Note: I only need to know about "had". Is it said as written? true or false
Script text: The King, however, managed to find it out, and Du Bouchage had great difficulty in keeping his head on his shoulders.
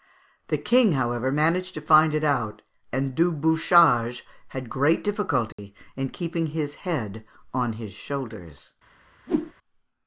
true